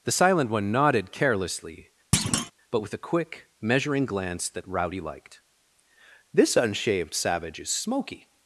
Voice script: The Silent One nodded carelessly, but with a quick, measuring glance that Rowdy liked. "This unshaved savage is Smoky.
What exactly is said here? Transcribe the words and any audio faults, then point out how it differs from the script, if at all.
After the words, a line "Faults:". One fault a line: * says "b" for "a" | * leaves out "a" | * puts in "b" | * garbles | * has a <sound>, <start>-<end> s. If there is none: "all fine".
The Silent One nodded carelessly, but with a quick, measuring glance that Rowdy liked. "This unshaved savage is Smoky.
Faults:
* has a thud, 2.1-2.5 s